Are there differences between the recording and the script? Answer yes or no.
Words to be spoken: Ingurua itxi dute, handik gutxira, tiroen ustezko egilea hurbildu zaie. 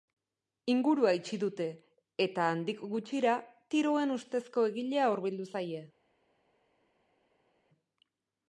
yes